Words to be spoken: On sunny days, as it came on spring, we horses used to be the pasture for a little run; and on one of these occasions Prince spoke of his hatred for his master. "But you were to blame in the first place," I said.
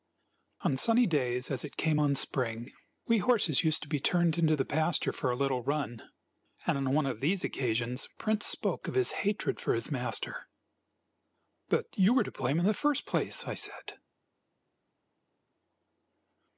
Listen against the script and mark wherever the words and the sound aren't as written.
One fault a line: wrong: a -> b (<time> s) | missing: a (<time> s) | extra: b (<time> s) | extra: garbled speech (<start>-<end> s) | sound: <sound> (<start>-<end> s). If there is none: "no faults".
extra: turned into (4.0 s)